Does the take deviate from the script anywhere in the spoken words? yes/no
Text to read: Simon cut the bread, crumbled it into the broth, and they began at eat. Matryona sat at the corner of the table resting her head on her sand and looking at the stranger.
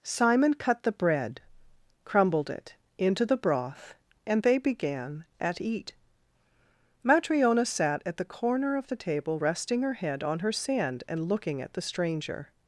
no